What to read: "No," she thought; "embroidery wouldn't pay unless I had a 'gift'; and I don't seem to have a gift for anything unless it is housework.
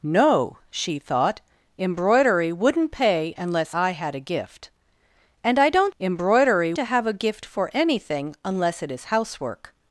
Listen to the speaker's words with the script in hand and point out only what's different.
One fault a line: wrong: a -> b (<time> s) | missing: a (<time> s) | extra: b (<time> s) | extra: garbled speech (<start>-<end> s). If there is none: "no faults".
wrong: seem -> embroidery (6.0 s)